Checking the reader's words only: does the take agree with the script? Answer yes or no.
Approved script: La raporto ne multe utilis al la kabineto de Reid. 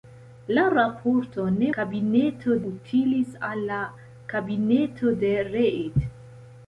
no